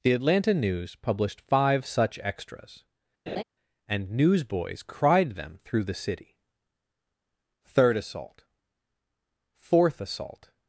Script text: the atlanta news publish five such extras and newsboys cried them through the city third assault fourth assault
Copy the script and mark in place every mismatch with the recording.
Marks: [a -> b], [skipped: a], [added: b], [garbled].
the atlanta news [publish -> published] five such extras and newsboys cried them through the city third assault fourth assault